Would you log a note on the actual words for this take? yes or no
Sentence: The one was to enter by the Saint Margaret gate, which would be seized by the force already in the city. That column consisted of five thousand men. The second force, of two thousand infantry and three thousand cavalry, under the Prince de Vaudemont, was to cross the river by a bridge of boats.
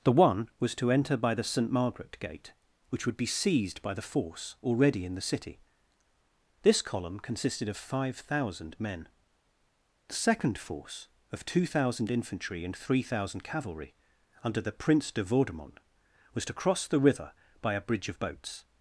yes